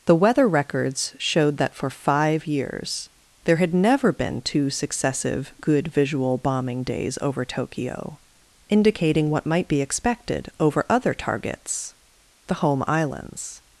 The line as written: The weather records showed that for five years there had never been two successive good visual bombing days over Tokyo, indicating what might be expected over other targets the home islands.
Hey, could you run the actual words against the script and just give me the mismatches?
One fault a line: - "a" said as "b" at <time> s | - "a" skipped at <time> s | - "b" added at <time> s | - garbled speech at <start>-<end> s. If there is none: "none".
none